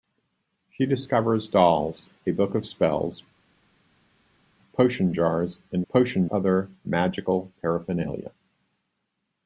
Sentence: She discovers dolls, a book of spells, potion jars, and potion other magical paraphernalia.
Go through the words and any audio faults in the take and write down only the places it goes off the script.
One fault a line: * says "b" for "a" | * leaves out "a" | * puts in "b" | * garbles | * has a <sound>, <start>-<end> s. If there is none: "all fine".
all fine